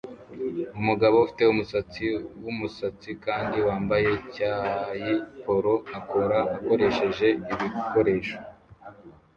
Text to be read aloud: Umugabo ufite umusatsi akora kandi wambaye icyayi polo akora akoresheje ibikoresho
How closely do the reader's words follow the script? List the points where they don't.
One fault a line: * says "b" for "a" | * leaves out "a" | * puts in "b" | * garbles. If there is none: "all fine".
* says "wumusatsi" for "akora"